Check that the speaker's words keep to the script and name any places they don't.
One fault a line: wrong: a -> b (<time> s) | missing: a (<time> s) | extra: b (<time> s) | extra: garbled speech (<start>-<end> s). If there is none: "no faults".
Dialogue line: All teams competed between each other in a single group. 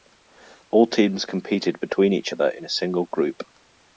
no faults